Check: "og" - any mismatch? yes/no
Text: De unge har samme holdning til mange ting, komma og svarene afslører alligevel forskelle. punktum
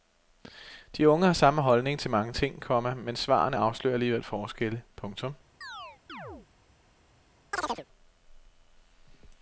yes